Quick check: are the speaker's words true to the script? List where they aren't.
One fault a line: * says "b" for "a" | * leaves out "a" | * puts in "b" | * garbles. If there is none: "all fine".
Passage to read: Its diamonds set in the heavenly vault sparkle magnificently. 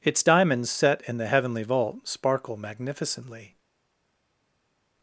all fine